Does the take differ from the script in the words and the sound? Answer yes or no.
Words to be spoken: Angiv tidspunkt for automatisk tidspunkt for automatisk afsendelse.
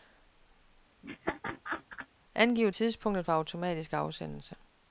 yes